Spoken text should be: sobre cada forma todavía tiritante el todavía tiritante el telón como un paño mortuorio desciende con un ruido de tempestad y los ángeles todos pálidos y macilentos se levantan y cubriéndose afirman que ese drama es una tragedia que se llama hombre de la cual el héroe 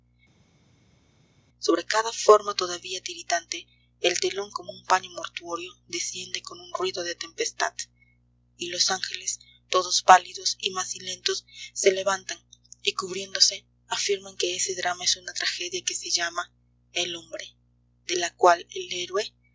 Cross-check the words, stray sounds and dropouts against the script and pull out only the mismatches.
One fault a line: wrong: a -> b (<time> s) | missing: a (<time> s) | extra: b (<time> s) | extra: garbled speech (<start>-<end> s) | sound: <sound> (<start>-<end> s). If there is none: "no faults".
missing: todavía tiritante el (4.2 s)
extra: el (16.9 s)